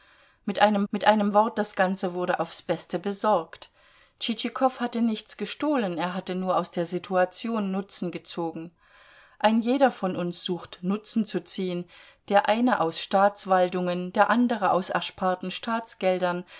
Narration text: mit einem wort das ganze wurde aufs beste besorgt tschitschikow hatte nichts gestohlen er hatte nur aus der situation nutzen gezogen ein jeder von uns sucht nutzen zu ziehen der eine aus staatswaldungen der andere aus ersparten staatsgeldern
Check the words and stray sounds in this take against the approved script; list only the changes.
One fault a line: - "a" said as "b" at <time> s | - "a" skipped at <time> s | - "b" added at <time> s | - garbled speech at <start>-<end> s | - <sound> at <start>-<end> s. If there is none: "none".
- "mit einem" added at 0.9 s